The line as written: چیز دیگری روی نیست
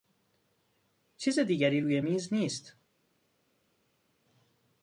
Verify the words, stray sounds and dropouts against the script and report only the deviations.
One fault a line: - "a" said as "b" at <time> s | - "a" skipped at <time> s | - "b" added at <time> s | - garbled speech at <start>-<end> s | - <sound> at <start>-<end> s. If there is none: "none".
- "میز" added at 2.0 s